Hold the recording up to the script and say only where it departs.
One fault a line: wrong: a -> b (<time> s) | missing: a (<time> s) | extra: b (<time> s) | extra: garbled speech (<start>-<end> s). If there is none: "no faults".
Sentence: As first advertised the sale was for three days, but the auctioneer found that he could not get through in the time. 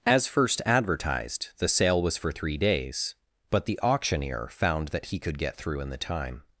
missing: not (5.4 s)